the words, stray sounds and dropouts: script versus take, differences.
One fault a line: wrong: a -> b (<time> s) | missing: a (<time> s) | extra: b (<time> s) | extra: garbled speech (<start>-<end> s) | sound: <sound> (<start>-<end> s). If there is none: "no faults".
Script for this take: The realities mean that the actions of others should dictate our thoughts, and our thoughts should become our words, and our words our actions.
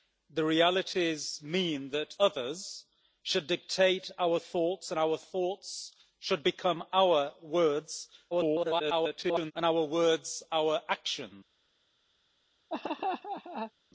missing: the actions of (2.1 s)
extra: garbled speech (8.3-9.5 s)
sound: laugh (12.7-13.7 s)